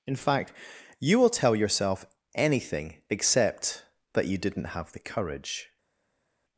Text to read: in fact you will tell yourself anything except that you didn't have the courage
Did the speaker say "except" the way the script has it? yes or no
yes